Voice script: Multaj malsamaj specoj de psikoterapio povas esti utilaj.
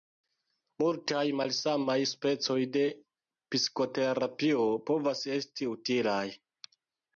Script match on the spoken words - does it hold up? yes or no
yes